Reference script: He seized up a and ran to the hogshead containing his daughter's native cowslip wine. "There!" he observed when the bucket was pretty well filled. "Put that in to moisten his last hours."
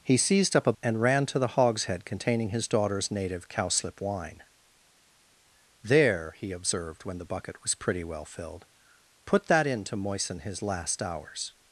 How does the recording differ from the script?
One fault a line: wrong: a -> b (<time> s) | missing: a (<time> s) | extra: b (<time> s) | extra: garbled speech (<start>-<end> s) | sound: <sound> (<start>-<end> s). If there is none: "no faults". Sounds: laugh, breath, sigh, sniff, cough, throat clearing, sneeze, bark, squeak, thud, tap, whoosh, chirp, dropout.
no faults